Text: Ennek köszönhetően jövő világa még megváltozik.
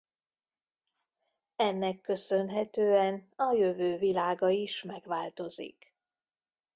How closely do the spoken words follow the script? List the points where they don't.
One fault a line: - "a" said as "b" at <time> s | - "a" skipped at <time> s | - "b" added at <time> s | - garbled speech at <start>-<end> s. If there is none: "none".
- "a" added at 3.4 s
- "még" said as "is" at 4.5 s